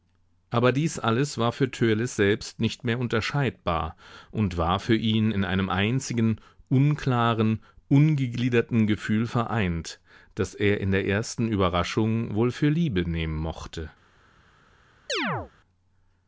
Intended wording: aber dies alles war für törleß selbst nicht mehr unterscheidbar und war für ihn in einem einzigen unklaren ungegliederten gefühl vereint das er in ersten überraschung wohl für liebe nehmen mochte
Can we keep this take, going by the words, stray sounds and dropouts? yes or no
no